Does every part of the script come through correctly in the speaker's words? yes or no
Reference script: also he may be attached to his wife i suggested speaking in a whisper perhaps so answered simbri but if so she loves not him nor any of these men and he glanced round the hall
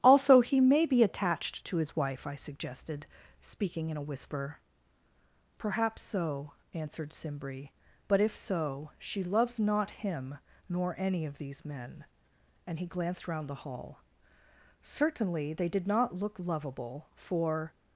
no